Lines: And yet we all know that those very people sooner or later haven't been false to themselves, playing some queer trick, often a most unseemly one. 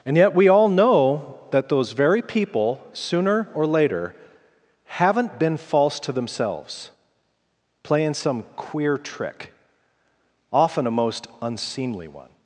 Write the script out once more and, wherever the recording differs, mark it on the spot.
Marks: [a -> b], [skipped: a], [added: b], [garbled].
And yet we all know that those very people sooner or later haven't been false to themselves, playing some queer trick, often a most unseemly one.